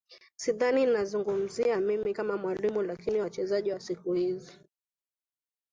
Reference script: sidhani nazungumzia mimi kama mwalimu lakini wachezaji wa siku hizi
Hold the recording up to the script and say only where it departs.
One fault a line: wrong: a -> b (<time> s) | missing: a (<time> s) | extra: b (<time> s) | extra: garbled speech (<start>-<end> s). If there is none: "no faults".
no faults